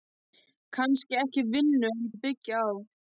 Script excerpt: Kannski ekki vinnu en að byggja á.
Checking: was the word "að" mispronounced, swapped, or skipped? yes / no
no